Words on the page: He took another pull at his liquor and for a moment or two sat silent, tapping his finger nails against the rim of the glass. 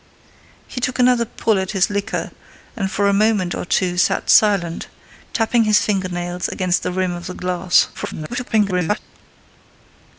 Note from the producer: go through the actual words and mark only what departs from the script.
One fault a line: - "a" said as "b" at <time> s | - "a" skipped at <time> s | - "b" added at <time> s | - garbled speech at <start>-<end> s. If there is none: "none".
- garbled speech at 7.9-9.0 s